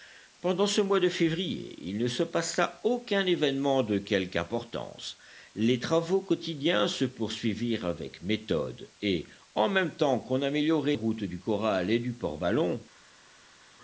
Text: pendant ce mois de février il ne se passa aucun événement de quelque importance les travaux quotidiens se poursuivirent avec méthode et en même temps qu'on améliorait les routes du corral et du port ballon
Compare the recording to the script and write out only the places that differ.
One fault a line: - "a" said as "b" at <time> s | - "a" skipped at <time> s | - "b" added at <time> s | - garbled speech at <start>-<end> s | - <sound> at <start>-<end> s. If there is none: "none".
- "les" skipped at 10.9 s